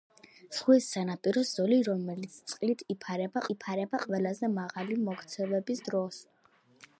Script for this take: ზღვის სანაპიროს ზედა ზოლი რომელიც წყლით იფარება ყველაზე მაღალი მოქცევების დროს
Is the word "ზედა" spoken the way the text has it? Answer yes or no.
no